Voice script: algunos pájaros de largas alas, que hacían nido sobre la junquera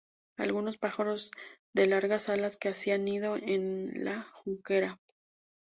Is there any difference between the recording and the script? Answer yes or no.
yes